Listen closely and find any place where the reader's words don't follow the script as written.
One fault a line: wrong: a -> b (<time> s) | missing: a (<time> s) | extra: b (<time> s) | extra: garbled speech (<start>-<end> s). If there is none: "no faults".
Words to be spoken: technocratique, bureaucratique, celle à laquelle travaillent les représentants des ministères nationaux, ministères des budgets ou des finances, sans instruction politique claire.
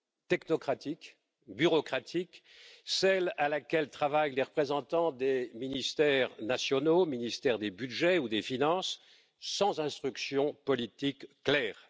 no faults